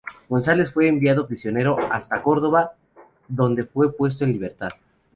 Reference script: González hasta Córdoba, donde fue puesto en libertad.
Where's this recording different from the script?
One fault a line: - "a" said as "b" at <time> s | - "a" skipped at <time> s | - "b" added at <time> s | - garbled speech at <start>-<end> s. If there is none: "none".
- "fue enviado prisionero" added at 0.7 s